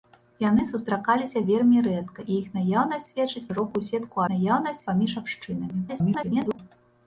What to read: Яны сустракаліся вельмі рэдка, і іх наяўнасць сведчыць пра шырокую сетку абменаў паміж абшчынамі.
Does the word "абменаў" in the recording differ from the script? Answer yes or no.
yes